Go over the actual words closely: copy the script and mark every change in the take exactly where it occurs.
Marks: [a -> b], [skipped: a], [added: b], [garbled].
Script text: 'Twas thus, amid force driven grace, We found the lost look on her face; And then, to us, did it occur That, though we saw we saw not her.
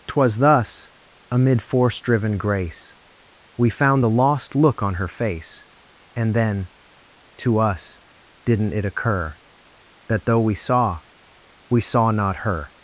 'Twas thus, amid force driven grace, We found the lost look on her face; And then, to us, [did -> didn't] it occur That, though we saw we saw not her.